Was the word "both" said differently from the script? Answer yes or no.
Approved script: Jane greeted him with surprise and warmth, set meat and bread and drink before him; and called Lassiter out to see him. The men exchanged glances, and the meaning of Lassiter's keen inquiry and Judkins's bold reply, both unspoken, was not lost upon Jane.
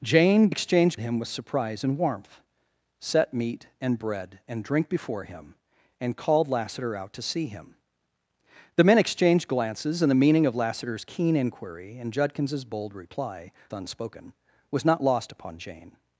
yes